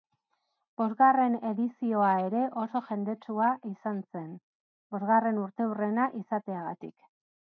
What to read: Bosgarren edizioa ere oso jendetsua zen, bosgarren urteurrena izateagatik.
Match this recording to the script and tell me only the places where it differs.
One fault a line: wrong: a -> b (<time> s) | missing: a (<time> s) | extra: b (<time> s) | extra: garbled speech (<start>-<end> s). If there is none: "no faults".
extra: izan (3.7 s)